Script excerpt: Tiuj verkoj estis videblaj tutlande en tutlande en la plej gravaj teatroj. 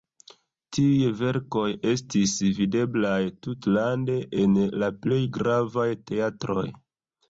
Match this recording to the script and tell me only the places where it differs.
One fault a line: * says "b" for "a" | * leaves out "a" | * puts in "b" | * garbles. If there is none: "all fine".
* leaves out "tutlande en"